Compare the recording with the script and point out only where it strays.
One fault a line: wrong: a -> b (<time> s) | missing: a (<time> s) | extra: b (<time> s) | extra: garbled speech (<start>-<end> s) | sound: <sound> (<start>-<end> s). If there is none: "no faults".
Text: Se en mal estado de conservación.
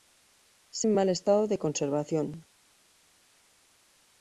no faults